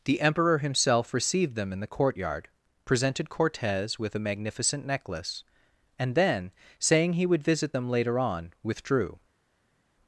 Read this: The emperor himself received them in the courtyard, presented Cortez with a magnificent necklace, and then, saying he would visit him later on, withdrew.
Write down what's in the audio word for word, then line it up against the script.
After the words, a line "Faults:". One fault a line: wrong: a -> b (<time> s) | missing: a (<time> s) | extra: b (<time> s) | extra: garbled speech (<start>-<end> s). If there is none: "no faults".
The emperor himself received them in the courtyard, presented Cortez with a magnificent necklace, and then, saying he would visit them later on, withdrew.
Faults:
wrong: him -> them (7.7 s)